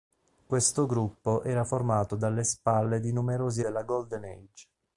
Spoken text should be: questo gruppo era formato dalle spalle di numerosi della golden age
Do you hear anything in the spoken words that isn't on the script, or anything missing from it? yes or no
no